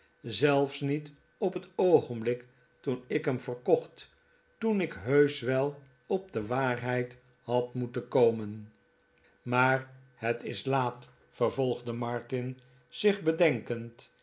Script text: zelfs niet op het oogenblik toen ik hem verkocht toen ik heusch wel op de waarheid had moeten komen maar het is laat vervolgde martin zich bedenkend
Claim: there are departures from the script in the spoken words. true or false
false